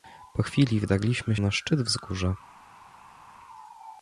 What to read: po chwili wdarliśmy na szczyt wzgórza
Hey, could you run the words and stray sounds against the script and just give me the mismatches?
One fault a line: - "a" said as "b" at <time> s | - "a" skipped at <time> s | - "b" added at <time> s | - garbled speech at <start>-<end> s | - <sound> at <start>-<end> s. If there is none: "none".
none